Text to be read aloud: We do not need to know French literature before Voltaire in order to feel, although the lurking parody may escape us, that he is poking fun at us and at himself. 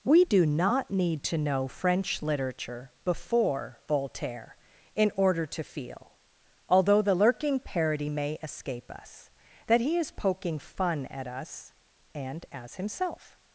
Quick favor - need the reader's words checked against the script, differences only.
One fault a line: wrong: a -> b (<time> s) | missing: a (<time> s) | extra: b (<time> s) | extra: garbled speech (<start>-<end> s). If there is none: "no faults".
wrong: at -> as (12.5 s)